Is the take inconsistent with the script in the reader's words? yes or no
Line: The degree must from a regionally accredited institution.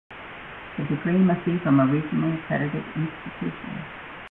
yes